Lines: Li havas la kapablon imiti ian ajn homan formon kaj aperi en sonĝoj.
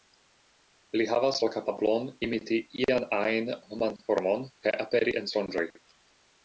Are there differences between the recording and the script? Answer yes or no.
no